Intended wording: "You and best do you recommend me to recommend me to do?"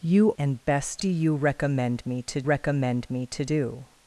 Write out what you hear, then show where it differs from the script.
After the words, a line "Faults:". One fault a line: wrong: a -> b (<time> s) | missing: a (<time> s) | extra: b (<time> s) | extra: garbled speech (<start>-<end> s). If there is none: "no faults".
"You and best do you recommend me to recommend me to do?"
Faults:
no faults